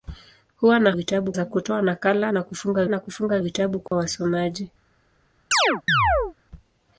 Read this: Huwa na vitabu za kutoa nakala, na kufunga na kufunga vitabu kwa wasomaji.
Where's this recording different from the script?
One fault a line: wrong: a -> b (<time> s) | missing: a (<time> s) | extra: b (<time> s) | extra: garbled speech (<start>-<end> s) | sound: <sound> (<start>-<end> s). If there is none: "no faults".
sound: dropout (3.9-3.9 s)
sound: chirp (5.5-6.3 s)